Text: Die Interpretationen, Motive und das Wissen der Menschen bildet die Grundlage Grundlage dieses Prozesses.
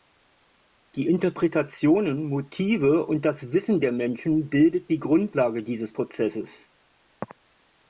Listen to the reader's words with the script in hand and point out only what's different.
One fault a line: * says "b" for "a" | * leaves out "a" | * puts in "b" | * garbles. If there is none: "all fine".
* leaves out "Grundlage"